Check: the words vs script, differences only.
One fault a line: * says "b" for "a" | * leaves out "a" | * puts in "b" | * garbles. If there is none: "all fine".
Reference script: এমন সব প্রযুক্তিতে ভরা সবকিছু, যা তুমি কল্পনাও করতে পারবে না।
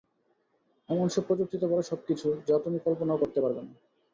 all fine